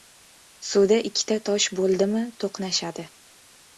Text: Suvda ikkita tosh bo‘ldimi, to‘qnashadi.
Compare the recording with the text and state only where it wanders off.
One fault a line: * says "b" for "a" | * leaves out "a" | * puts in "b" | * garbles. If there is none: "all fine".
all fine